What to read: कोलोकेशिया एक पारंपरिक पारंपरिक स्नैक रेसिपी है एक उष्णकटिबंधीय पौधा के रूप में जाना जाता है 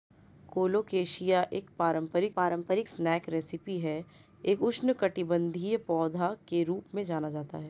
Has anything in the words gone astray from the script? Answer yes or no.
no